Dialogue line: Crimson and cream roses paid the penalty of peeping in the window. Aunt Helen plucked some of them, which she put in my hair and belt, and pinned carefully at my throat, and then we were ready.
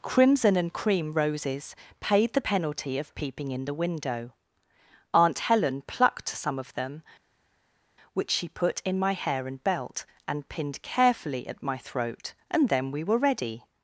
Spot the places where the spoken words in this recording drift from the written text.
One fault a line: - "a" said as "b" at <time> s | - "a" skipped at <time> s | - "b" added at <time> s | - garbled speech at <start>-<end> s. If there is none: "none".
none